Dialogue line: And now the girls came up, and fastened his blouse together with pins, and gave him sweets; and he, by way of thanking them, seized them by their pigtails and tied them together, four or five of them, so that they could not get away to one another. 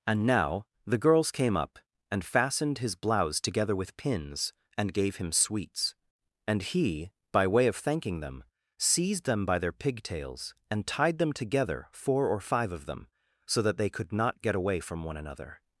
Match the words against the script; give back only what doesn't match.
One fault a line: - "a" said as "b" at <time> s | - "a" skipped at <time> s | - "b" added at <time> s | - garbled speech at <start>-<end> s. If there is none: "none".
- "to" said as "from" at 14.8 s